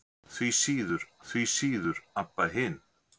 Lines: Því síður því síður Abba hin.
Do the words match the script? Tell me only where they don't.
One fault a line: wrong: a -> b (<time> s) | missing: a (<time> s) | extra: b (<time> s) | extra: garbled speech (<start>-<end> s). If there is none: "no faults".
no faults